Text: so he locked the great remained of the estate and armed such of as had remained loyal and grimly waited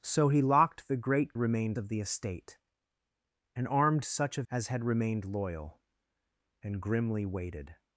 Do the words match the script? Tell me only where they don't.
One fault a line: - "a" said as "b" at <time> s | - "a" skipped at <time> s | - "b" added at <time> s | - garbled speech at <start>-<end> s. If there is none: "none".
none